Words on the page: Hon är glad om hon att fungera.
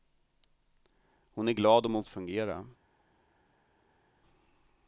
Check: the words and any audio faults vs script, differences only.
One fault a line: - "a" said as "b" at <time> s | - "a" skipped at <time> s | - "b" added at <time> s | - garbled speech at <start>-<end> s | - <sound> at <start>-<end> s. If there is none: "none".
none